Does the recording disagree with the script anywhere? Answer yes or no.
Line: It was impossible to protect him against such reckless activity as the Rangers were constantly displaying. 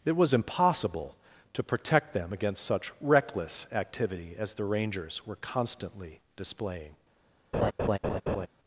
yes